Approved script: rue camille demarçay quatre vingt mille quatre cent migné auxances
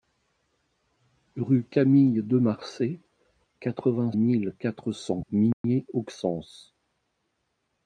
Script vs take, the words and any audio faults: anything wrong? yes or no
yes